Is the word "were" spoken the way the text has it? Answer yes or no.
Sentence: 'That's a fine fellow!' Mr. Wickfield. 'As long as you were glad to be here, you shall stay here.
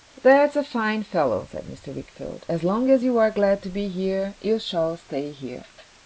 no